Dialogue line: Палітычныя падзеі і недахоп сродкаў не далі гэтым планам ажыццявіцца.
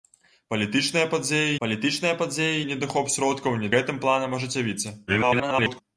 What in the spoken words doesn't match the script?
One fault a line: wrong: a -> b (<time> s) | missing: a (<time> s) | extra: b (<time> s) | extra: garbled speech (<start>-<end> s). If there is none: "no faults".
extra: палітычныя падзеі (1.6 s)
missing: далі (3.7 s)
extra: garbled speech (5.1-5.8 s)